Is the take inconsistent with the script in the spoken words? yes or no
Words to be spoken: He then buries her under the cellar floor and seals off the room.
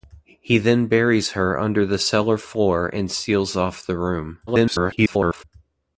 yes